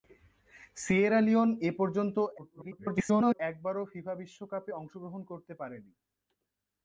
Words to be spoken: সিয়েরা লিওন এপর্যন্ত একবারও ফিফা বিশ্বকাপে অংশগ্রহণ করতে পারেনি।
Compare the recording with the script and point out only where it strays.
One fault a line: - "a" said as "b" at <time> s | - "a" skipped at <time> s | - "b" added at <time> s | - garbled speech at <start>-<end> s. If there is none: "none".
- garbled speech at 2.4-3.4 s